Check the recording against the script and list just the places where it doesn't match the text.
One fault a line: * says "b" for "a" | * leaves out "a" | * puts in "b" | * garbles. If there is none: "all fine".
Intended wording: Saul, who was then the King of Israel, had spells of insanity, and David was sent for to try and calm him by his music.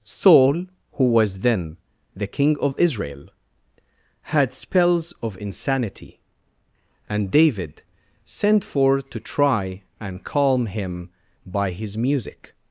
* leaves out "was"